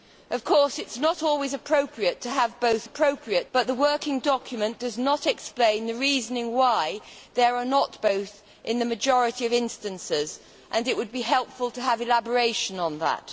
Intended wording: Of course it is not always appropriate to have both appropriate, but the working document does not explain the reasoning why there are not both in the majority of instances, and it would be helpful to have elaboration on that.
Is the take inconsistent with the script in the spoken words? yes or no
no